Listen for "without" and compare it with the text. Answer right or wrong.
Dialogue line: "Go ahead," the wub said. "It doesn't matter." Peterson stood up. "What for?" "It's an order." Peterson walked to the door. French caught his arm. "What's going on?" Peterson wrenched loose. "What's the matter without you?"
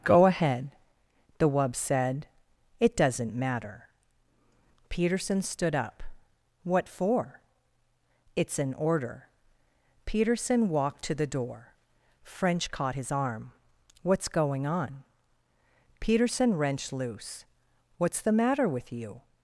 wrong